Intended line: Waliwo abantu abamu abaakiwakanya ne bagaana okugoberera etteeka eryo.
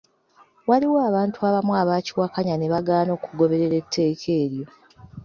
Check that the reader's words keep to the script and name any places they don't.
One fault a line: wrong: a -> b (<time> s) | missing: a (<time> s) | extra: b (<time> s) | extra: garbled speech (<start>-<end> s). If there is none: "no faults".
no faults